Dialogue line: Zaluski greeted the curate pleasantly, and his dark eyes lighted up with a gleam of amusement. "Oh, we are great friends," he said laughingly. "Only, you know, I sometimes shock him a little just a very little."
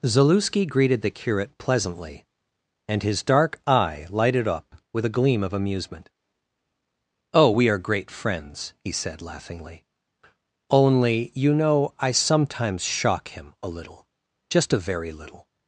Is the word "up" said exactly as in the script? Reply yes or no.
yes